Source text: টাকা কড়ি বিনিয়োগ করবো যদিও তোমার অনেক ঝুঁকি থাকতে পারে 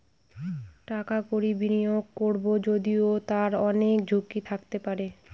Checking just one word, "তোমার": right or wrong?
wrong